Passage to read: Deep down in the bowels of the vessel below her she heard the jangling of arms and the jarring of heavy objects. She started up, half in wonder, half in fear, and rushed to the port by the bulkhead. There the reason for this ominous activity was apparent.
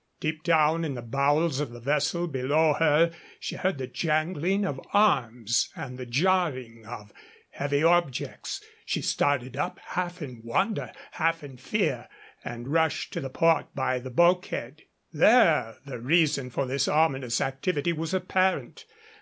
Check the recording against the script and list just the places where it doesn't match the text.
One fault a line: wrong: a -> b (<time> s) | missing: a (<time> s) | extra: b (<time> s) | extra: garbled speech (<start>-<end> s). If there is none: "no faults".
no faults